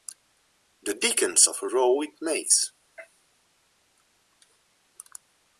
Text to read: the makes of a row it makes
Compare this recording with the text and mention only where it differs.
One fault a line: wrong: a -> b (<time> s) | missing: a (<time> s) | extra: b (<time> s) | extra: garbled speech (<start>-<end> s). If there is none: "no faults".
wrong: makes -> dickens (0.9 s)